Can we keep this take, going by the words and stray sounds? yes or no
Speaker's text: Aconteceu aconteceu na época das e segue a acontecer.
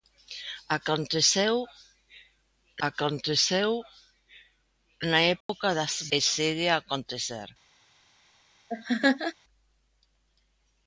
no